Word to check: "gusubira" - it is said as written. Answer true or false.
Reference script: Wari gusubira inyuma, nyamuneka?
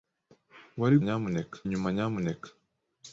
false